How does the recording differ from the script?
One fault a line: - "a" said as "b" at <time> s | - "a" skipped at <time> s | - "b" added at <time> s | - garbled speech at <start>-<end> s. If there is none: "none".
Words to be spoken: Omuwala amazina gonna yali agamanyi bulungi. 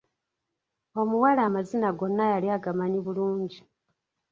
none